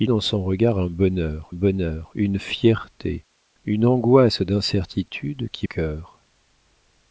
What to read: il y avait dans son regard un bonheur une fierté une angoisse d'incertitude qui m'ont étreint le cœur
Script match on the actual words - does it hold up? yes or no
no